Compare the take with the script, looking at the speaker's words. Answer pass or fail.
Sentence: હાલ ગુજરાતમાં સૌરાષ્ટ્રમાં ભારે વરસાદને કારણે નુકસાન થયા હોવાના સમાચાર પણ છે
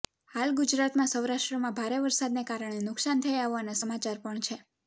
pass